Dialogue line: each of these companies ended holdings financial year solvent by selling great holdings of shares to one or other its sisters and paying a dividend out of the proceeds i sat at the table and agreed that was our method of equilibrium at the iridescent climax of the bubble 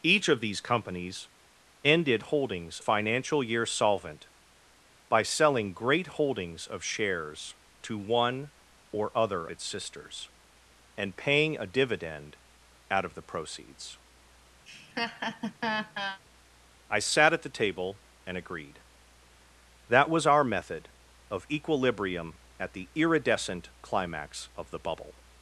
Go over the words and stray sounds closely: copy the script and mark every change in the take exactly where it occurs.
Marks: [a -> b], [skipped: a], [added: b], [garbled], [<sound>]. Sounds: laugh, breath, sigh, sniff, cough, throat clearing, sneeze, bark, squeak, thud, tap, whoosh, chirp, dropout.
each of these companies ended holdings financial year solvent by selling great holdings of shares to one or other its sisters and paying a dividend out of the proceeds [laugh] i sat at the table and agreed that was our method of equilibrium at the iridescent climax of the bubble